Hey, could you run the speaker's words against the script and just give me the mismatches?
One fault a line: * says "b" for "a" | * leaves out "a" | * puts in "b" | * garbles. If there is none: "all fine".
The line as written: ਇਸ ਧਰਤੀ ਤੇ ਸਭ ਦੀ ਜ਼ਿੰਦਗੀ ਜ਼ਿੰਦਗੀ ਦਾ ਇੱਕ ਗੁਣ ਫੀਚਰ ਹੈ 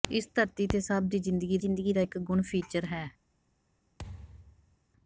all fine